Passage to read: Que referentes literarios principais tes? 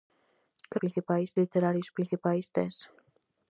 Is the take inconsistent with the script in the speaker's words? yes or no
yes